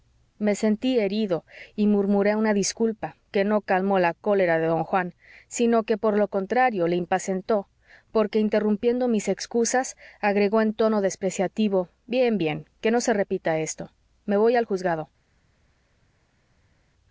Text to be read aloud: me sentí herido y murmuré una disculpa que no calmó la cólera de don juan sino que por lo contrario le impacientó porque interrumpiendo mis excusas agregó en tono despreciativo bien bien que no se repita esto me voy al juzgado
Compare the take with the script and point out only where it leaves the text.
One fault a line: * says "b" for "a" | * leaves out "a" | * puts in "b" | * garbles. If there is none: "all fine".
all fine